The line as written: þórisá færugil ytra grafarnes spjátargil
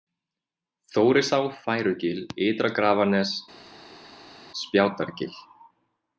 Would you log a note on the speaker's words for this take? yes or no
no